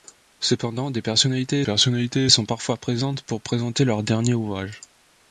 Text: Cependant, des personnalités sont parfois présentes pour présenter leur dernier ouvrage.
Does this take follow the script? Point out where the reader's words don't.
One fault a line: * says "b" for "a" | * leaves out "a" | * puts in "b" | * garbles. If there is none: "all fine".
* puts in "personnalités"